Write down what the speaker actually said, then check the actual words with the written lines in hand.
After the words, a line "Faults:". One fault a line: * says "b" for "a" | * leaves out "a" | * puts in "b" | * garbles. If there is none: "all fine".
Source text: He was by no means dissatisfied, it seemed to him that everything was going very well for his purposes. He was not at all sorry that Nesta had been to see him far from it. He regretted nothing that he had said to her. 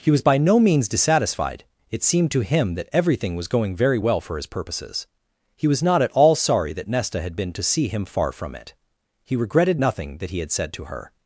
He was by no means dissatisfied, it seemed to him that everything was going very well for his purposes. He was not at all sorry that Nesta had been to see him far from it. He regretted nothing that he had said to her.
Faults:
all fine